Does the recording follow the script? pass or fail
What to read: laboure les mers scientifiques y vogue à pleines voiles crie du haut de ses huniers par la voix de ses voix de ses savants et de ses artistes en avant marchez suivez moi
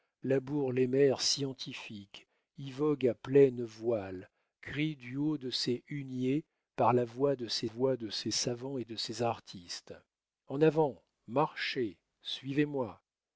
pass